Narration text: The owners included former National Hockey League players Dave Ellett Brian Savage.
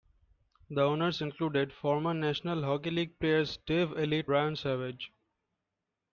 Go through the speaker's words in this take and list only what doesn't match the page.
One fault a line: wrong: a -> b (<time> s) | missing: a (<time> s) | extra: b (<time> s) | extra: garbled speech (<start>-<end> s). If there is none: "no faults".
no faults